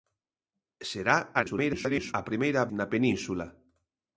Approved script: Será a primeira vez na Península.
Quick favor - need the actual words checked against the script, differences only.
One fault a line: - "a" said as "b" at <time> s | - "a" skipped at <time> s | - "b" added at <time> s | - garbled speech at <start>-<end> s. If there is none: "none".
- garbled speech at 1.3-2.1 s
- "vez" skipped at 2.6 s